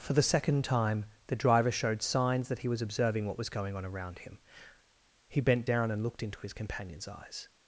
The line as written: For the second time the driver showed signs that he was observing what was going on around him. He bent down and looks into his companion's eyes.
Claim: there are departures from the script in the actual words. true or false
true